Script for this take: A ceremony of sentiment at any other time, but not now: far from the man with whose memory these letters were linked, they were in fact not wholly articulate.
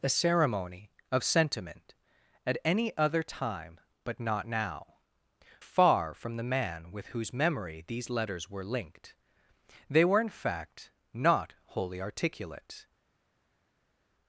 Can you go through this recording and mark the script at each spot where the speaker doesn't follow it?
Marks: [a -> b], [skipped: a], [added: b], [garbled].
A ceremony of sentiment at any other time, but not now: far from the man with whose memory these letters were linked, they were in fact not wholly articulate.